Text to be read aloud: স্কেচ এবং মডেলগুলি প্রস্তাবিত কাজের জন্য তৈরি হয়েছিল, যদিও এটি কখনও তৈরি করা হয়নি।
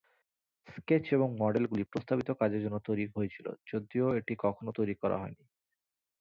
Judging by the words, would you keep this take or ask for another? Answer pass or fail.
pass